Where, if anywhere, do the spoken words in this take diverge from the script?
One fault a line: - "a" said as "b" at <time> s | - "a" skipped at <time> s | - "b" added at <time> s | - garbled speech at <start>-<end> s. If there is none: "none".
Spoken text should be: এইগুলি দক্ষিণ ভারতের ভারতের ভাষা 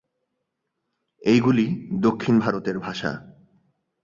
- "ভারতের" skipped at 2.8 s